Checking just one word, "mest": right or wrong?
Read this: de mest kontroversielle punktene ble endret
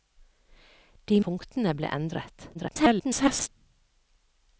wrong